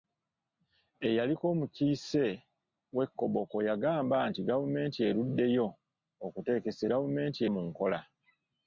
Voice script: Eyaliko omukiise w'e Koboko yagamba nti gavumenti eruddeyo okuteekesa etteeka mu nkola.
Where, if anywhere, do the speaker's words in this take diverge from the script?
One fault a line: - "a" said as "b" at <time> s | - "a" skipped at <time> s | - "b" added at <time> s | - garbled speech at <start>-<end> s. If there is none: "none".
- "etteeka" said as "gavumenti" at 6.9 s